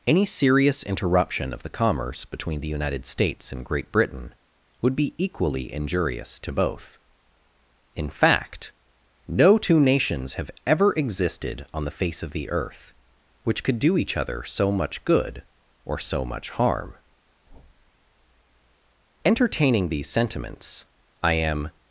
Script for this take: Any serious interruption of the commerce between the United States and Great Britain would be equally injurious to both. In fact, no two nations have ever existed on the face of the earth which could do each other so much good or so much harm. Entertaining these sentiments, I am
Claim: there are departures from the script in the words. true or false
false